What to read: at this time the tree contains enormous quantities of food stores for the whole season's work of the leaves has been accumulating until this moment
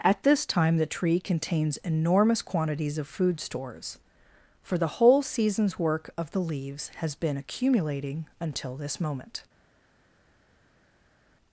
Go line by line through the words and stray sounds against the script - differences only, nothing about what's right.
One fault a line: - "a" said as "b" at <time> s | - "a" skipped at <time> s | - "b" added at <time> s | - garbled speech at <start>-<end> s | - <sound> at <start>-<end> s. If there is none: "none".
none